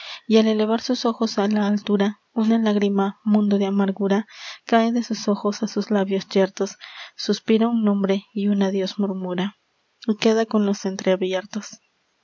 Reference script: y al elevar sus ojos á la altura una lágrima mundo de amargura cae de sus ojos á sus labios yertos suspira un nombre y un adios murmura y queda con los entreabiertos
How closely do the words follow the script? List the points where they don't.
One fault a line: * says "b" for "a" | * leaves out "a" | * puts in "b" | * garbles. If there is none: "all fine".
all fine